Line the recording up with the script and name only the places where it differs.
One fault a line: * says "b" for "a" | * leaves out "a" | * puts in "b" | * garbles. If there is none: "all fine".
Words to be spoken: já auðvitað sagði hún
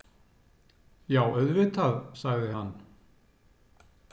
* says "hann" for "hún"